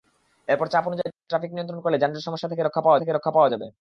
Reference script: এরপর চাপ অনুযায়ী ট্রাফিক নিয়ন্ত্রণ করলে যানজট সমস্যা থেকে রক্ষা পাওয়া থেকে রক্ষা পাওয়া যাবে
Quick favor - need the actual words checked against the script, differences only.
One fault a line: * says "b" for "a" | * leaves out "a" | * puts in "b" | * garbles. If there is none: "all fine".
all fine